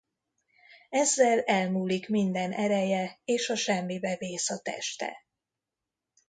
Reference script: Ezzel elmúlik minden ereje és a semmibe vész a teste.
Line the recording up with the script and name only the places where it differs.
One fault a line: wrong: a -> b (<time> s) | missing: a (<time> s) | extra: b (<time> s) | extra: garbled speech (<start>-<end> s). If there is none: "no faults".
no faults